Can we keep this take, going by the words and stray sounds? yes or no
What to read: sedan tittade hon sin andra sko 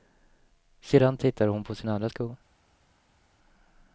no